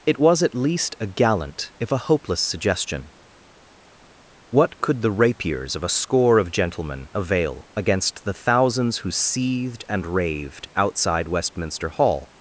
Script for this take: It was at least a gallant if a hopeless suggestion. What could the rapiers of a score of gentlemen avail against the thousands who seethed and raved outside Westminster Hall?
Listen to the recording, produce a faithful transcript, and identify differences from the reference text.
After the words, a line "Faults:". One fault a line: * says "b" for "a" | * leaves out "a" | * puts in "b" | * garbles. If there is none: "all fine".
It was at least a gallant if a hopeless suggestion. What could the rapiers of a score of gentlemen avail against the thousands who seethed and raved outside Westminster Hall?
Faults:
all fine